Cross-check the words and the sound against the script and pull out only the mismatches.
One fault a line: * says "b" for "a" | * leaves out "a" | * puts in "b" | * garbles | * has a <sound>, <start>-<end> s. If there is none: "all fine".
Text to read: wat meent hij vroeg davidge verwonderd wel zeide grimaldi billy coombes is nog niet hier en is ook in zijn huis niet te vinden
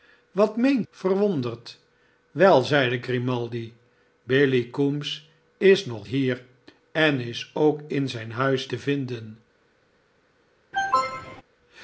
* leaves out "hij vroeg davidge"
* leaves out "niet"
* leaves out "niet"
* has a cough, 10.7-11.4 s